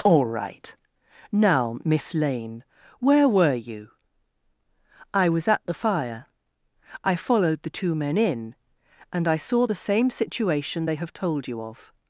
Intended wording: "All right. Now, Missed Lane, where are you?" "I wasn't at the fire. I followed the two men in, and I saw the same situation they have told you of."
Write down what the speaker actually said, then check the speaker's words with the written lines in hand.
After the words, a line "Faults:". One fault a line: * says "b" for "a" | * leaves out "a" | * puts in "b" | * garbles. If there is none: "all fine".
"All right. Now, Miss Lane, where were you?" "I was at the fire. I followed the two men in, and I saw the same situation they have told you of."
Faults:
* says "Miss" for "Missed"
* says "were" for "are"
* says "was" for "wasn't"